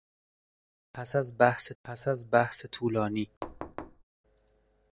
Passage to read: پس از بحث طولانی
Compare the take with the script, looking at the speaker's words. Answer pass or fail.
fail